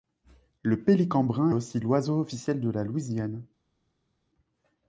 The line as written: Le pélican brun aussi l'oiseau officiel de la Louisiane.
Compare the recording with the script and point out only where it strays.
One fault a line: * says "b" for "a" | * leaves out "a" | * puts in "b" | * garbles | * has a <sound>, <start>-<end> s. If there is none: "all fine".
all fine